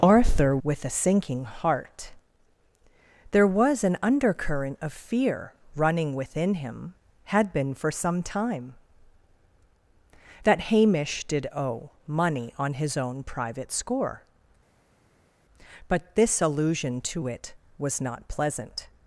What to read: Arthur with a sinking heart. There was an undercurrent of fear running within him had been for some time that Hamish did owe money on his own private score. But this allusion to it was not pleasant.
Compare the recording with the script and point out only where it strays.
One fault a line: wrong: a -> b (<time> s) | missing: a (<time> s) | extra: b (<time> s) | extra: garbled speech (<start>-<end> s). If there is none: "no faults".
no faults